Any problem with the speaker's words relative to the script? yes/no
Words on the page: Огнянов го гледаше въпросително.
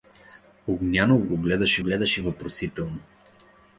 yes